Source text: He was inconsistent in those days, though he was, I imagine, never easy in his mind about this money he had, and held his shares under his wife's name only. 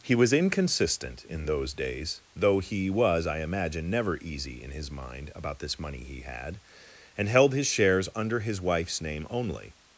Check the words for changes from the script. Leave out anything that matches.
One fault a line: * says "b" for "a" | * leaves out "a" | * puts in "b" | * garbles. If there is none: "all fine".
all fine